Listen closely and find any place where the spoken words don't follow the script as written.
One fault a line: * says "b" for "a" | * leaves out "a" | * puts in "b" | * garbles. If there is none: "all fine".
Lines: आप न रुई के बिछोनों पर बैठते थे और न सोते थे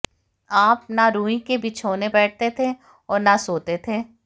* leaves out "पर"